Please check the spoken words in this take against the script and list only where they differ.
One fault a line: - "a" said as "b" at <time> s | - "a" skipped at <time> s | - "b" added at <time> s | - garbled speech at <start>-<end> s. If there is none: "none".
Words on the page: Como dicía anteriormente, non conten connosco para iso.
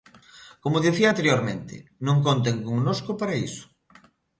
none